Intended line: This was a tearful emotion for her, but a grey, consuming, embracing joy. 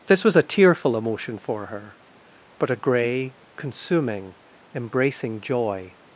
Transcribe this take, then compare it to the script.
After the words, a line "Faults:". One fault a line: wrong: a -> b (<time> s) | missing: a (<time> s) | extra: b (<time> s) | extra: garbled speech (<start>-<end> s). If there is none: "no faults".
This was a tearful emotion for her, but a grey, consuming, embracing joy.
Faults:
no faults